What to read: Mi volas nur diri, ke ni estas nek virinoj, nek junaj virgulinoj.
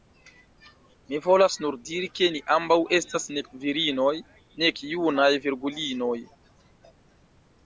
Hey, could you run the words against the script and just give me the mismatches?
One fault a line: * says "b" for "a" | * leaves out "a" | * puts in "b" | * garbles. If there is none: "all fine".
* puts in "ambaŭ"